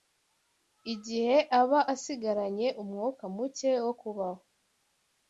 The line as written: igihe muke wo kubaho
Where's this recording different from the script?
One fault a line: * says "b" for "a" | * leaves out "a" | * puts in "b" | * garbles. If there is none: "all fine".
* puts in "aba asigaranye umwuka"